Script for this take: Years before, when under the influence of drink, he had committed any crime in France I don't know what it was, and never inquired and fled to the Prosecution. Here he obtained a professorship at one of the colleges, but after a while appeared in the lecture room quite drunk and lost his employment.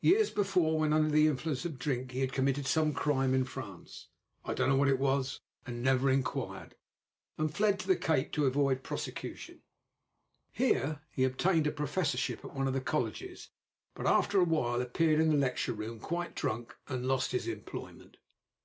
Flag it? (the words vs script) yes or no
yes